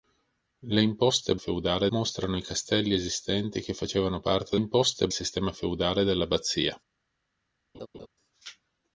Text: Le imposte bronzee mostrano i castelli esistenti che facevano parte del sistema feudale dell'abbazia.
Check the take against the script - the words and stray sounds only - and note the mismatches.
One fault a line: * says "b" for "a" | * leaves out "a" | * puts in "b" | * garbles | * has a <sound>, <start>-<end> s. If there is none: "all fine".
* says "feudale" for "bronzee"
* says "imposte" for "del"
* has a laugh, 7.7-8.1 s